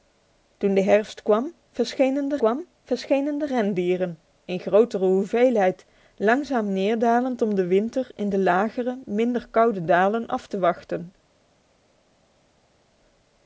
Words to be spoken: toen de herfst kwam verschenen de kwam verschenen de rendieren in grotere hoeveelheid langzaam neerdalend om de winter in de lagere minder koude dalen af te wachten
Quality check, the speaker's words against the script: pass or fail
pass